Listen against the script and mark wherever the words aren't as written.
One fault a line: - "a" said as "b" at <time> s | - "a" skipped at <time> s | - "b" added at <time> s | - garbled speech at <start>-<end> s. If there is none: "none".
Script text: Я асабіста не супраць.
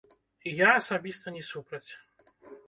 none